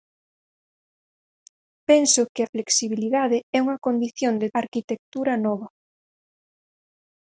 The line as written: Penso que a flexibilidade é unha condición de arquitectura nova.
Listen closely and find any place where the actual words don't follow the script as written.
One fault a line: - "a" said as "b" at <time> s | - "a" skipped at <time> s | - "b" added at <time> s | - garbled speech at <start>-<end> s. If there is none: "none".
none